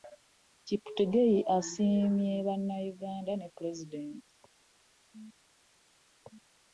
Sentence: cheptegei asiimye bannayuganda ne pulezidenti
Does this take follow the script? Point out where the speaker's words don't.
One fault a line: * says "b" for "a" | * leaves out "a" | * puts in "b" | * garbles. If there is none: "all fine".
all fine